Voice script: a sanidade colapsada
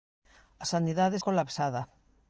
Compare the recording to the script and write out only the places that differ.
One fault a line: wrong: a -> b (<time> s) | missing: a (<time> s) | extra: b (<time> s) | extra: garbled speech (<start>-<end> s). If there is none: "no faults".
no faults